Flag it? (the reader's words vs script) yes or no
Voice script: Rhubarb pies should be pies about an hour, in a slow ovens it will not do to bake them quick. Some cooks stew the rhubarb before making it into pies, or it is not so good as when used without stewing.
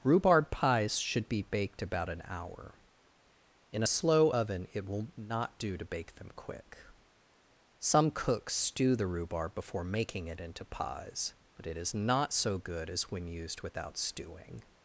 yes